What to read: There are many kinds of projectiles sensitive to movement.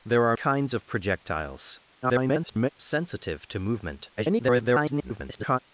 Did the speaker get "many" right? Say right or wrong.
wrong